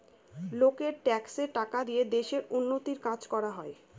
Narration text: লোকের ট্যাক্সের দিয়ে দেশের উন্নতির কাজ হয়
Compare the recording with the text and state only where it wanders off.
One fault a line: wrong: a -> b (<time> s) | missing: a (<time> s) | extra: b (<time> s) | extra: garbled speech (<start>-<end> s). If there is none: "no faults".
extra: টাকা (1.5 s)
extra: করা (3.3 s)